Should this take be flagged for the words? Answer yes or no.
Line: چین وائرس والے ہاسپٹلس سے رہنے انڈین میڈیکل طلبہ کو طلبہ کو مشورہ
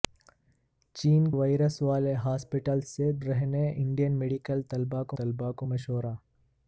no